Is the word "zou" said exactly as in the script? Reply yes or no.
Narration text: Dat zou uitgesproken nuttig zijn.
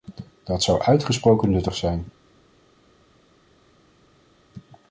yes